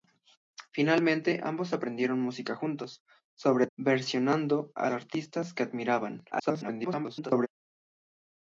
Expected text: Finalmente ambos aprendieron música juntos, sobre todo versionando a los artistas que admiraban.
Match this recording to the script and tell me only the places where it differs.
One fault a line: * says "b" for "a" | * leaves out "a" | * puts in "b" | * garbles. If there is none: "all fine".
* leaves out "todo"
* leaves out "los"
* garbles